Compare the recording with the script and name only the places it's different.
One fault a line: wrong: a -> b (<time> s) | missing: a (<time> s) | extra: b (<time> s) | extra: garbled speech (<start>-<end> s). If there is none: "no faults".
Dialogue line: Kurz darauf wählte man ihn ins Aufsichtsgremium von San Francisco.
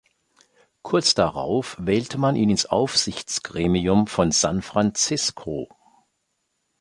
no faults